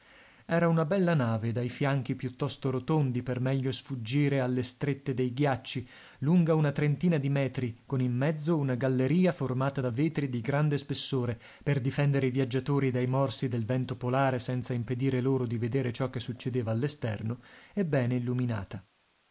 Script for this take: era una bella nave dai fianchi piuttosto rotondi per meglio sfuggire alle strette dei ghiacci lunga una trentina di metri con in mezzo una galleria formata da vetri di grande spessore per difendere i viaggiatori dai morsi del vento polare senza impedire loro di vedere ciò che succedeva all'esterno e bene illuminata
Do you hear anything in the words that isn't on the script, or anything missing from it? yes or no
no